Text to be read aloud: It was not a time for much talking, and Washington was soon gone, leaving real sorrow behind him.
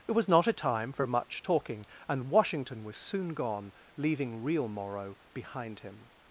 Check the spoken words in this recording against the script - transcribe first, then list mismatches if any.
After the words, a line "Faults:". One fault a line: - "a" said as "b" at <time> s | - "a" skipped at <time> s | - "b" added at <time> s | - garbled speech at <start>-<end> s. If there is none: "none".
It was not a time for much talking, and Washington was soon gone, leaving real morrow behind him.
Faults:
- "sorrow" said as "morrow" at 4.7 s